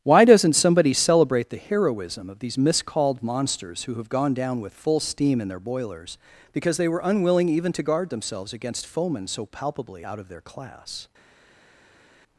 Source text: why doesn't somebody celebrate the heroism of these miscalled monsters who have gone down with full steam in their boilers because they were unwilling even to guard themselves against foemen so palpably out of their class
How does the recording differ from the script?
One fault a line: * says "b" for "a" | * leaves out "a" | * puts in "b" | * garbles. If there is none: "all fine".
all fine